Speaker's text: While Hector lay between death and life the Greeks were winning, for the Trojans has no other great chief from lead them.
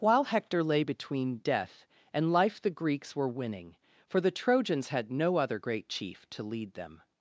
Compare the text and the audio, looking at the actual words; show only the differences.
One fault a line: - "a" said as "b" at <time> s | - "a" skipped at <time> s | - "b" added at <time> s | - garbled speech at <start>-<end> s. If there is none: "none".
- "has" said as "had" at 4.9 s
- "from" said as "to" at 6.3 s